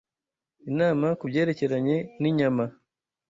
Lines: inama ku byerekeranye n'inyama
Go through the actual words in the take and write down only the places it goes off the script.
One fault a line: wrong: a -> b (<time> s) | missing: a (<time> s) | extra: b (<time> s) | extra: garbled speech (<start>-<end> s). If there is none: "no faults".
no faults